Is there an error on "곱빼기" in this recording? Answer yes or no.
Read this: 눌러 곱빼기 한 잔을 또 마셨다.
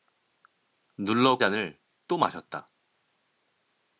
yes